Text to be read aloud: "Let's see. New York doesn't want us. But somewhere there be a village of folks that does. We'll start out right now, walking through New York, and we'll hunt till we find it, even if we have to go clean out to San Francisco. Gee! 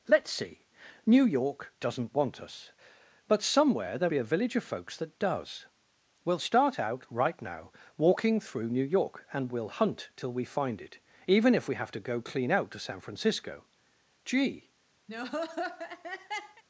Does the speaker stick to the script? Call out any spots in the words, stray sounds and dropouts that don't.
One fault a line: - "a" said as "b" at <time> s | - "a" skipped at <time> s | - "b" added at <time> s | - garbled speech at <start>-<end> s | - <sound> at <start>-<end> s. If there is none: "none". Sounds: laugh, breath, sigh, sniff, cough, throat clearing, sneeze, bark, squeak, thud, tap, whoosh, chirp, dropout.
- laugh at 15.1-16.6 s